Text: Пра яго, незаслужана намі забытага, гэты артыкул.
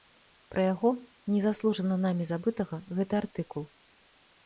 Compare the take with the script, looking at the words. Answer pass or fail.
pass